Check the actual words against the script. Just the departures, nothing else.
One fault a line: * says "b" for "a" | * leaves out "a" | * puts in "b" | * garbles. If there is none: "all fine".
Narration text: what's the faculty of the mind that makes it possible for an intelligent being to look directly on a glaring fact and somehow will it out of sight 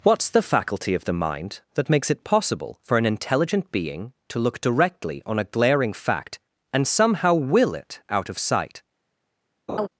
all fine